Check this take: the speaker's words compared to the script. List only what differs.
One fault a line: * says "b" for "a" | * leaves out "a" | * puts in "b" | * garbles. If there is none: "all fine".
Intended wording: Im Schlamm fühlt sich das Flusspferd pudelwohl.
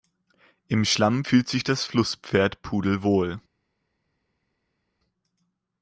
all fine